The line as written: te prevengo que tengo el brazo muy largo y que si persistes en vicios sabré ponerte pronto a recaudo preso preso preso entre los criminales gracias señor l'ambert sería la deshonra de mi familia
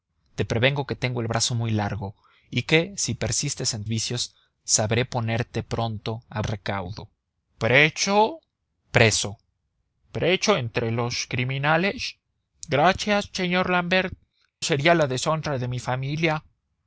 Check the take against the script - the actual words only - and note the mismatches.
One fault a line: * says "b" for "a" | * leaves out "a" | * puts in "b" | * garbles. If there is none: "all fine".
all fine